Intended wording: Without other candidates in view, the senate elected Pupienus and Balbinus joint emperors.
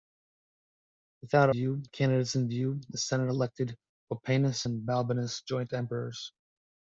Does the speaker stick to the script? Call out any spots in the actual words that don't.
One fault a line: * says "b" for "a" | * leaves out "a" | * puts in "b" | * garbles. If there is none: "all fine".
* says "view" for "other"